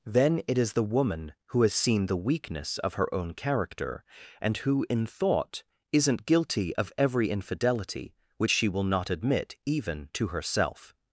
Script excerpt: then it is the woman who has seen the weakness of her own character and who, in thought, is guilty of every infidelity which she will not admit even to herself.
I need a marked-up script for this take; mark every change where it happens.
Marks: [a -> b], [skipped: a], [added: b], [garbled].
then it is the woman who has seen the weakness of her own character and who, in thought, [is -> isn't] guilty of every infidelity which she will not admit even to herself.